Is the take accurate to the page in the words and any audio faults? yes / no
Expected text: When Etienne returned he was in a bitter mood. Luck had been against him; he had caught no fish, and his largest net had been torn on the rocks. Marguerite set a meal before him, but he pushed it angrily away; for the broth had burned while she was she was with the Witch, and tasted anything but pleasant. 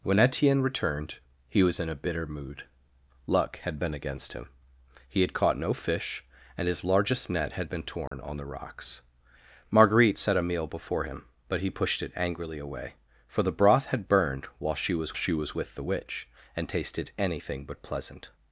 no